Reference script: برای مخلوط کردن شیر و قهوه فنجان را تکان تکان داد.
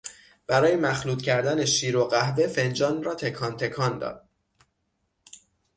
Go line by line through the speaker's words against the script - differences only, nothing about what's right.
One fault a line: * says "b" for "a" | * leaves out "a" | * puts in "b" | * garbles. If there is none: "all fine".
all fine